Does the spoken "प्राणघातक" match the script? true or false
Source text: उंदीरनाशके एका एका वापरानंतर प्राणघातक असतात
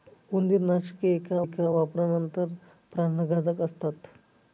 true